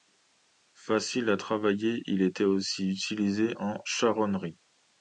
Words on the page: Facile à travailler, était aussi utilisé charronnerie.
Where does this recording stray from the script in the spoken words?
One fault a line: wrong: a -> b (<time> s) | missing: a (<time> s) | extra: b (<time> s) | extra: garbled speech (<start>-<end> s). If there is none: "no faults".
extra: il (2.1 s)
extra: en (3.5 s)